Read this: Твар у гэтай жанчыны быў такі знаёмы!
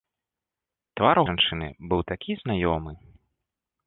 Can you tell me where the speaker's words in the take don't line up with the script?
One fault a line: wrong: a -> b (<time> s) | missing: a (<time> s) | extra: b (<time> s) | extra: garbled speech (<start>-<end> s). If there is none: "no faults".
missing: гэтай (1.2 s)